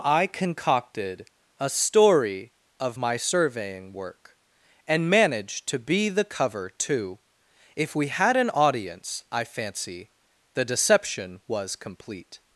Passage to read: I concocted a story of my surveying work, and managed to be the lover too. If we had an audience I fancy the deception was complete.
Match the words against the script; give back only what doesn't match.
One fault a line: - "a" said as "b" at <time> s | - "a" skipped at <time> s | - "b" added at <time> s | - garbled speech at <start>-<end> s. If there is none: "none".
- "lover" said as "cover" at 6.2 s